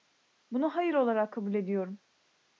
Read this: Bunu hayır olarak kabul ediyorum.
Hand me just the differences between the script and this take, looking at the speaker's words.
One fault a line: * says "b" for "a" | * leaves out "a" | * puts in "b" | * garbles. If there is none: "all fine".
all fine